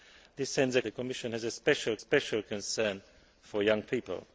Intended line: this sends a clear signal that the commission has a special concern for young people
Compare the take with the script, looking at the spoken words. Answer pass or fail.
fail